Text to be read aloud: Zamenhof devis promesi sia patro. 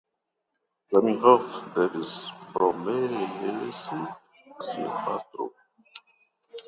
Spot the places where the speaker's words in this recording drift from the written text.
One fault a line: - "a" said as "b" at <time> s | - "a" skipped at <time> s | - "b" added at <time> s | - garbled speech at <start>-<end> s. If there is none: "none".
none